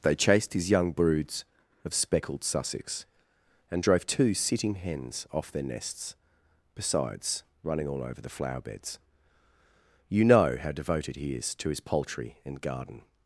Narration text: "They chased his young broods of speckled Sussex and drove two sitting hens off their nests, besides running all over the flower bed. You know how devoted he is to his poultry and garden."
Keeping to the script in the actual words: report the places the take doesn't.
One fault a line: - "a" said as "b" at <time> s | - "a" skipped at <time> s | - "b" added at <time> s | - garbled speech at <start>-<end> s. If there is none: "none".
- "bed" said as "beds" at 8.6 s